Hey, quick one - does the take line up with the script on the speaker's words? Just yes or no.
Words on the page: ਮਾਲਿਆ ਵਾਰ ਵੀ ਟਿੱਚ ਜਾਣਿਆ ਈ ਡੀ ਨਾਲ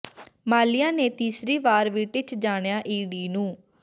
no